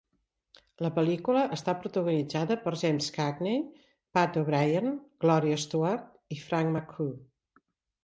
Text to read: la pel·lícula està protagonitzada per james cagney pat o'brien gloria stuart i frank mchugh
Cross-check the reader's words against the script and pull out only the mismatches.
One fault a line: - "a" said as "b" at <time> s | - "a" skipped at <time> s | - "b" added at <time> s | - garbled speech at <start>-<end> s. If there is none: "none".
none